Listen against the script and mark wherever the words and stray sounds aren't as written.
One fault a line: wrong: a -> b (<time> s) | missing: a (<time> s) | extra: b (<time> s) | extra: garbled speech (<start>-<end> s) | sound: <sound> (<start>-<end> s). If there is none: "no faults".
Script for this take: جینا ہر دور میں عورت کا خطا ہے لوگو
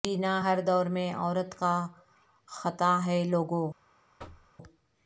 sound: thud (4.2-4.5 s)